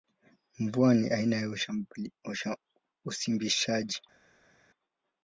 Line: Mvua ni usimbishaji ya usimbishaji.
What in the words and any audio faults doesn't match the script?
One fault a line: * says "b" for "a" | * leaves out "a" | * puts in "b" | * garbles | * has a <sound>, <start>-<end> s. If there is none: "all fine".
* says "aina" for "usimbishaji"